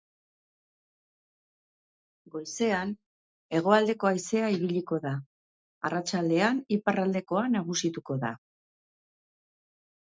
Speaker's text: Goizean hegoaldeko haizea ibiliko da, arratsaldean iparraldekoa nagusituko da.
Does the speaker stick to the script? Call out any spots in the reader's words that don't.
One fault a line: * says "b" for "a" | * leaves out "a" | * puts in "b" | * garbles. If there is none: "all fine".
all fine